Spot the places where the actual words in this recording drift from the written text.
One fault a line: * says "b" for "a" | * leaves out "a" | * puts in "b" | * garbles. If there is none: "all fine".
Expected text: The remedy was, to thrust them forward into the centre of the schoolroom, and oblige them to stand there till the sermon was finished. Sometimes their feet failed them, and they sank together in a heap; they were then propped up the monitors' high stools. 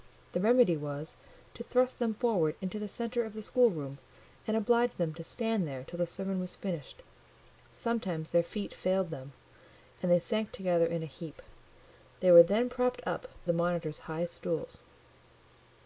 all fine